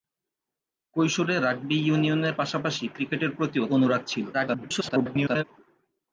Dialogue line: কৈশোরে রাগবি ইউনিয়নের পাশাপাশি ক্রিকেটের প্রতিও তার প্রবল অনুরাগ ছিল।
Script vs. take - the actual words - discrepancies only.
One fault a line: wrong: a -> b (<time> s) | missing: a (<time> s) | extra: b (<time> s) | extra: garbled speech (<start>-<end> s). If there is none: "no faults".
missing: তার প্রবল (3.6 s)
extra: garbled speech (4.3-5.4 s)